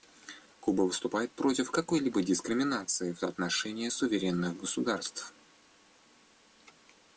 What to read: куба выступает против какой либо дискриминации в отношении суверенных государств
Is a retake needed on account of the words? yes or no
no